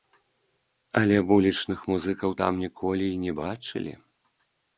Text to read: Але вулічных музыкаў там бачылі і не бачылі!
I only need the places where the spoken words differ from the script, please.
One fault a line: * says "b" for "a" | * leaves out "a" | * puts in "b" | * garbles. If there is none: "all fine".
* says "ніколі" for "бачылі"